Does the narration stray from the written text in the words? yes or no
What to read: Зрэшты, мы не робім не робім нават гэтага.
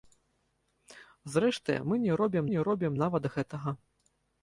no